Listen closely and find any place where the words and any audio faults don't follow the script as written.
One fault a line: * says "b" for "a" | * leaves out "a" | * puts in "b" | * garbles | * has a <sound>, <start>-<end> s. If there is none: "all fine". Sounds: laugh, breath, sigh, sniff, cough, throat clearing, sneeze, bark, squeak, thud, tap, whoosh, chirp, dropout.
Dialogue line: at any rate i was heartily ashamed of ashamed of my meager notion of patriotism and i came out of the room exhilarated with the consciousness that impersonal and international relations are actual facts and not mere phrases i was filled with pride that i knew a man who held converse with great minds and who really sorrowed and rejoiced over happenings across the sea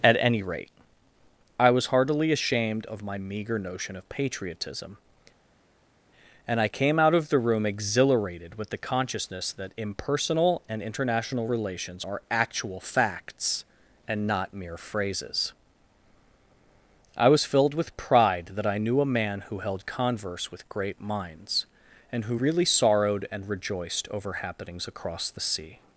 * leaves out "ashamed of"